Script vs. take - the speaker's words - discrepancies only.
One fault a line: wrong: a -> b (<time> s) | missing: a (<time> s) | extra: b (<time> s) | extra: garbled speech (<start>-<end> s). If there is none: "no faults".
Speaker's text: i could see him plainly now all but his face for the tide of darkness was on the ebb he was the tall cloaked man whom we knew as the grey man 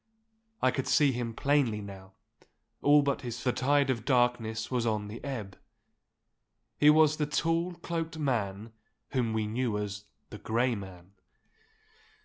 missing: face for (3.4 s)